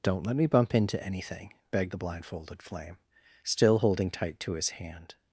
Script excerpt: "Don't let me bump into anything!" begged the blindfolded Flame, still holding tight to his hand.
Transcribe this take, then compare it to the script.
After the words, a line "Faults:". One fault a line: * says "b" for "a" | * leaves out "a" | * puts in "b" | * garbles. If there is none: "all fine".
"Don't let me bump into anything!" begged the blindfolded Flame, still holding tight to his hand.
Faults:
all fine